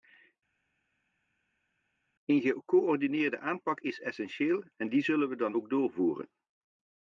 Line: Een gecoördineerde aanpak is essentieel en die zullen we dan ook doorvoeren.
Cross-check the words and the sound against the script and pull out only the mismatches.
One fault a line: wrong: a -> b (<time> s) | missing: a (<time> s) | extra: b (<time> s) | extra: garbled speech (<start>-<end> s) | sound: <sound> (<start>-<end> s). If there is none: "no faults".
no faults